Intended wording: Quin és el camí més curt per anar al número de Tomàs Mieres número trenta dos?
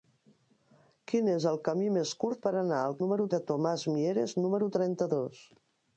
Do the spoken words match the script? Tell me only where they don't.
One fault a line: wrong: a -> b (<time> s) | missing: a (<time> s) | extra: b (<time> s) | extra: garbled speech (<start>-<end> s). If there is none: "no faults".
no faults